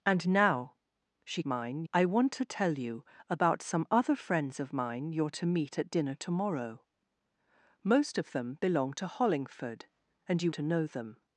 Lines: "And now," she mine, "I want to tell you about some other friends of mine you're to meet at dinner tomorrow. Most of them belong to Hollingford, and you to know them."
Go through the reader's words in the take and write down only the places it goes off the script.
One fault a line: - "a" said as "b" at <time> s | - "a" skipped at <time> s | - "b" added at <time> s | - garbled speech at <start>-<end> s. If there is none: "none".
none